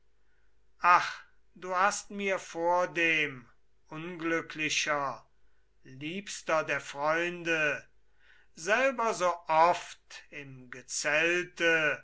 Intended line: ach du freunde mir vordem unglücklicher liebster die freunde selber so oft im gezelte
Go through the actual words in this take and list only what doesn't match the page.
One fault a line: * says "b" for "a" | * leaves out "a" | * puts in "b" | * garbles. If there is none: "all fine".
* says "hast" for "freunde"
* says "der" for "die"